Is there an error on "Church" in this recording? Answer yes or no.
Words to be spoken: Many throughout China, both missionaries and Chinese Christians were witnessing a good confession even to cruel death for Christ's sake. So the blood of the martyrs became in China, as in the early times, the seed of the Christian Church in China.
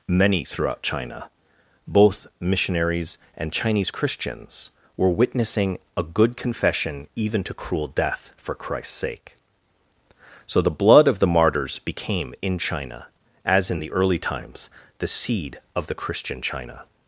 yes